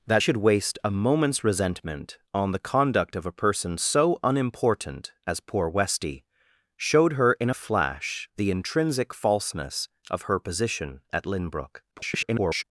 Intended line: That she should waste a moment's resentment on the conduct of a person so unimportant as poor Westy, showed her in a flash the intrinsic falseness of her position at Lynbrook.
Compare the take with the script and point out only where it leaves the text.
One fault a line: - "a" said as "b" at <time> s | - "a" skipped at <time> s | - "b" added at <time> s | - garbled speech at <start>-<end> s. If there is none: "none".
- "she" skipped at 0.2 s
- garbled speech at 11.9-12.6 s